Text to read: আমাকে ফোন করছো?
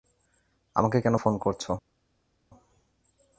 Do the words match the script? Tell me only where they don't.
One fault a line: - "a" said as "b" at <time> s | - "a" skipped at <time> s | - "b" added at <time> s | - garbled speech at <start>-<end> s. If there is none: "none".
- "কেন" added at 1.0 s